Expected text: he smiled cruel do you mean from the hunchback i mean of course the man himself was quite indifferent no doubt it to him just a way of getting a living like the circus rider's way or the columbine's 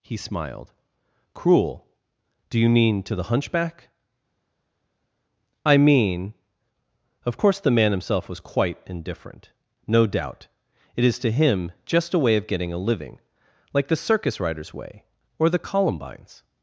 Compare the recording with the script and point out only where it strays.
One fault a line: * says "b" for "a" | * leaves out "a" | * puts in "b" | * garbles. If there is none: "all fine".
* says "to" for "from"
* puts in "is"